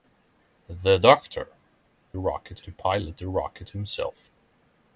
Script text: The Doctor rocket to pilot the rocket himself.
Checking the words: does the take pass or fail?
pass